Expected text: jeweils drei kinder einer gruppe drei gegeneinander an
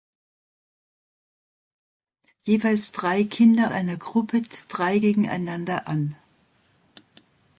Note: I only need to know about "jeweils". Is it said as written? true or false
true